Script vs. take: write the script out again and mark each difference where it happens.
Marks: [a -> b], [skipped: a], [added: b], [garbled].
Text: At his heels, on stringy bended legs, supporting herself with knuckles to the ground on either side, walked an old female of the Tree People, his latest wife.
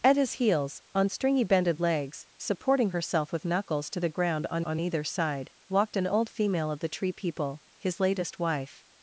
At his heels, on stringy bended legs, supporting herself with knuckles to the ground on [added: on] either side, walked an old female of the Tree People, his latest wife.